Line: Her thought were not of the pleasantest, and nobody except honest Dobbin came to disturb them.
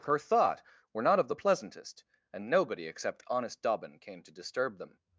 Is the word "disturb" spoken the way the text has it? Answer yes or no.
yes